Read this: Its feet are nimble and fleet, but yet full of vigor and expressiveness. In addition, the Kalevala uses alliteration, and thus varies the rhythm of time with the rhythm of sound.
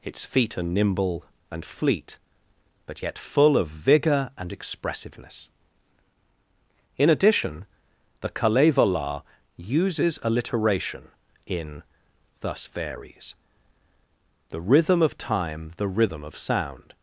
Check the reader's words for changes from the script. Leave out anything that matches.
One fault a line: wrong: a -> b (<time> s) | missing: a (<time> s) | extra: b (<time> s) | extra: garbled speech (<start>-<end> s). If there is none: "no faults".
wrong: and -> in (11.5 s)
missing: with (15.7 s)